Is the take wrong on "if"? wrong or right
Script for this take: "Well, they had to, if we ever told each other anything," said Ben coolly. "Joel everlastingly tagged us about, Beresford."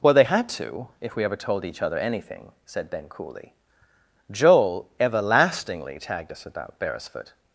right